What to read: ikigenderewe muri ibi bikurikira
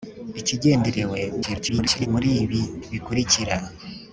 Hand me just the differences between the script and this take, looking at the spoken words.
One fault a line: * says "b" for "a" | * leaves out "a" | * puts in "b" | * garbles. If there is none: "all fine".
* garbles